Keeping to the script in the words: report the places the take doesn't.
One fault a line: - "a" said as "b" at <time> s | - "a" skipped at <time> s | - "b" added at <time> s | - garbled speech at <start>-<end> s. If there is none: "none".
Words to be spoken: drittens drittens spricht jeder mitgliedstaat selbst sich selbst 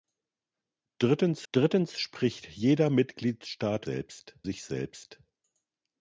none